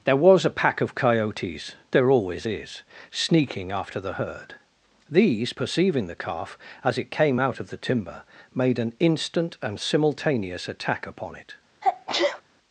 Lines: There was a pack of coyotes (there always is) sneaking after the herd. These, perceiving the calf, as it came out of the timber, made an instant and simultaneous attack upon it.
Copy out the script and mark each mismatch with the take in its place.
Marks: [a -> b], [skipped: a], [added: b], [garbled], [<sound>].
There was a pack of coyotes (there always is) sneaking after the herd. These, perceiving the calf, as it came out of the timber, made an instant and simultaneous attack upon it. [sneeze]